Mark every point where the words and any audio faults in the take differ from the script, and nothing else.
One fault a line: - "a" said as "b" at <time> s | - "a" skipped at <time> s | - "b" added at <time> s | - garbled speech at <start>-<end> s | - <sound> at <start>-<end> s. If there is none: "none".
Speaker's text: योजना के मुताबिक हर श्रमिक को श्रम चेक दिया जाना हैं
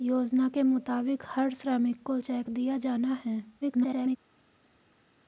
- "श्रम" skipped at 2.2 s
- garbled speech at 3.6-4.2 s